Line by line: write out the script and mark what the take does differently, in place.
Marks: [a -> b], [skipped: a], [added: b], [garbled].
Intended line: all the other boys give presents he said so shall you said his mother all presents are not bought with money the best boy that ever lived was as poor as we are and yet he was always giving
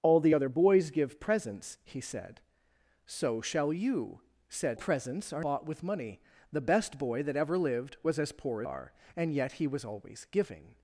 all the other boys give presents he said so shall you said [skipped: his mother all] presents are [skipped: not] bought with money the best boy that ever lived was as poor [skipped: as we] are and yet he was always giving